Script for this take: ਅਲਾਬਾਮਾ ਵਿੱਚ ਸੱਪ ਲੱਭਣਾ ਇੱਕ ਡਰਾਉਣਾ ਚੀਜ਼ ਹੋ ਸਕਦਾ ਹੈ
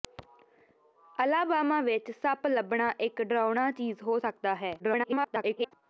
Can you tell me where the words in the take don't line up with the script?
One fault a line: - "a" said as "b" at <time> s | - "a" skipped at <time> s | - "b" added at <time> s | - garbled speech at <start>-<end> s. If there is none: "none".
- garbled speech at 4.8-5.7 s